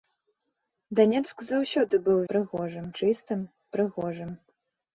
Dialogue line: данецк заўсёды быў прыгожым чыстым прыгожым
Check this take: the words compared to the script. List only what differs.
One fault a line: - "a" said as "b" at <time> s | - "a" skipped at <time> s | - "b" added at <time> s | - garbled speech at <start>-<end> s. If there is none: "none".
none